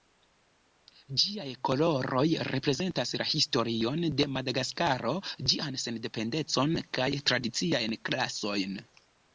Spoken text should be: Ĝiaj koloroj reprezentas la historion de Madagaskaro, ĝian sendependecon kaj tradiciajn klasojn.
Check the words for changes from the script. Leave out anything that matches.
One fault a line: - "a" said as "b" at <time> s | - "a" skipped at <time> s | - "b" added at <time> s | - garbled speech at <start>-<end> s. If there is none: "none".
none